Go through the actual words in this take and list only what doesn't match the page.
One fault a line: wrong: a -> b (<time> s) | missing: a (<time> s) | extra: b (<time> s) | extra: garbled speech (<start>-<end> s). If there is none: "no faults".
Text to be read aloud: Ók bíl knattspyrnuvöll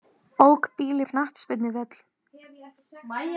no faults